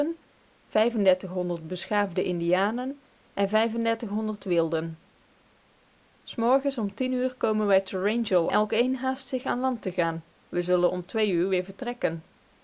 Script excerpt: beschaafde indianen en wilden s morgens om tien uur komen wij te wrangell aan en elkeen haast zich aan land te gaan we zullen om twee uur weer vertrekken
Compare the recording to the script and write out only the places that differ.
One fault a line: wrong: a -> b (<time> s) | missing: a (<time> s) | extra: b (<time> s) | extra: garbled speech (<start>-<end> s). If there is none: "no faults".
missing: aan en (8.5 s)